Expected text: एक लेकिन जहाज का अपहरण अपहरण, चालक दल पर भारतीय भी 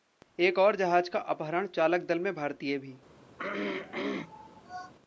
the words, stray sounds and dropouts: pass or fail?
fail